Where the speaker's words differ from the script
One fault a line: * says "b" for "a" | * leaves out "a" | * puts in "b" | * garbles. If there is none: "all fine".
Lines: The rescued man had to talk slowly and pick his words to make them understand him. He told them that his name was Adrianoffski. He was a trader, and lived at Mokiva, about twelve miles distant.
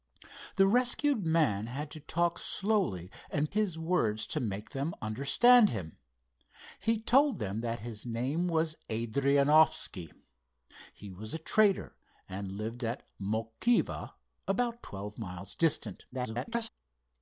* leaves out "pick"
* garbles